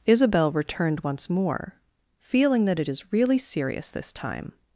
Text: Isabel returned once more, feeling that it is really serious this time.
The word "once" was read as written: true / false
true